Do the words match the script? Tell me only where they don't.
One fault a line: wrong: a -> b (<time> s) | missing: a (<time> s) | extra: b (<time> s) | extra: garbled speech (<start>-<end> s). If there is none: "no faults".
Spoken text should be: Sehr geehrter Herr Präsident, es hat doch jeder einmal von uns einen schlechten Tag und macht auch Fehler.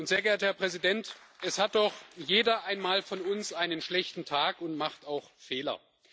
no faults